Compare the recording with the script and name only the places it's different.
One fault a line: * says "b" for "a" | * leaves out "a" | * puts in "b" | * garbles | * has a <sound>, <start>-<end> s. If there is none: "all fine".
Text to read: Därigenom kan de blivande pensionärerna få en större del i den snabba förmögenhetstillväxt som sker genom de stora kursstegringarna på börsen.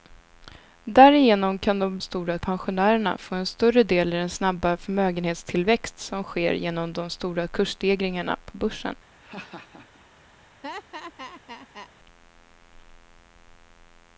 * says "stora" for "blivande"
* has a laugh, 9.2-10.1 s
* has a laugh, 10.6-11.9 s